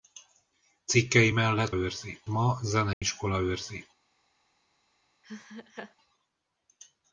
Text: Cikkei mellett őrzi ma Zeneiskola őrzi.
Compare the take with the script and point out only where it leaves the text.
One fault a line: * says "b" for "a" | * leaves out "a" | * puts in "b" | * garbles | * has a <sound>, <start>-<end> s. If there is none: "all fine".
* has a dropout, 2.9-3.0 s
* has a laugh, 5.2-6.0 s